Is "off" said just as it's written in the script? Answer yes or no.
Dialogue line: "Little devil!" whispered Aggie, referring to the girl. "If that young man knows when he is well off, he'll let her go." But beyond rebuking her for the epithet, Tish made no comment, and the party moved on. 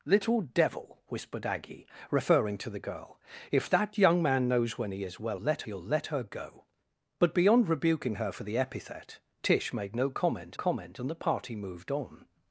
no